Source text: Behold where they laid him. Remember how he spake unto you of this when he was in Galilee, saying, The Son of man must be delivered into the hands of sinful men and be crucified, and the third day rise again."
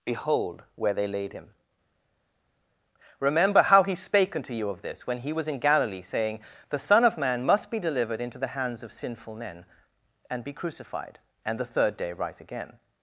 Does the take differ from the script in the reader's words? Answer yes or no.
no